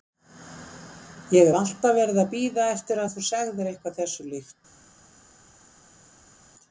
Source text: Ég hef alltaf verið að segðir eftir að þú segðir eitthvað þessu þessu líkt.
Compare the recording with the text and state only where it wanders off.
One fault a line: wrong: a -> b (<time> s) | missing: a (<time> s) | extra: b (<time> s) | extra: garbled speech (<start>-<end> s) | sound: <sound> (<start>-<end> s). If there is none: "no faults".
wrong: segðir -> bíða (2.3 s)
missing: þessu (4.3 s)